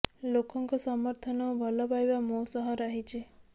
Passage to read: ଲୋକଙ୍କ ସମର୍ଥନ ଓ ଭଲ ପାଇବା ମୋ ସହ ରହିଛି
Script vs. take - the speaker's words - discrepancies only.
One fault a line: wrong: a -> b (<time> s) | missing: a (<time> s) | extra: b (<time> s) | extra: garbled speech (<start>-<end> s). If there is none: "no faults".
no faults